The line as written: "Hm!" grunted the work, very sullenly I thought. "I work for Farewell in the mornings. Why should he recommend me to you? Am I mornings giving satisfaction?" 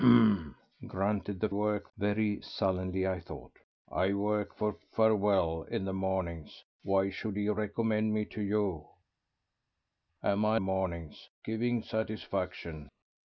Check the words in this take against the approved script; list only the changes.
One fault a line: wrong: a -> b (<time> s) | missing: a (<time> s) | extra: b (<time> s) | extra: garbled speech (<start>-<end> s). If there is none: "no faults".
no faults